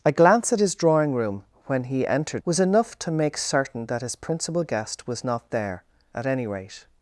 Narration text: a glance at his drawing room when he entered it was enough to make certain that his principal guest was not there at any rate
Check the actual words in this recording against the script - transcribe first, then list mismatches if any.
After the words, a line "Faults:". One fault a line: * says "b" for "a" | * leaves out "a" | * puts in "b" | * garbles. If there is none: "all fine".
a glance at his drawing room when he entered was enough to make certain that his principal guest was not there at any rate
Faults:
* leaves out "it"